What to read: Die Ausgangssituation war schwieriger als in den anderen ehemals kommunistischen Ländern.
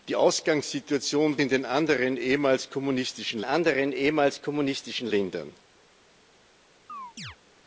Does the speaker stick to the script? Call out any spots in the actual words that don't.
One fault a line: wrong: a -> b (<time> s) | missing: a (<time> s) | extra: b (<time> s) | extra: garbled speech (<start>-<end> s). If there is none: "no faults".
wrong: war schwieriger als in den -> in den anderen ehemals kommunistischen (1.4 s)